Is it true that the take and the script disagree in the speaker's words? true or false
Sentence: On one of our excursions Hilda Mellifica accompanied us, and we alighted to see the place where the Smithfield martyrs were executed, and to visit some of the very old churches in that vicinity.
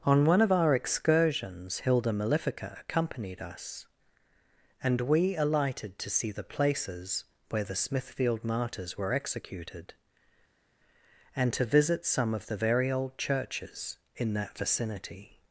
true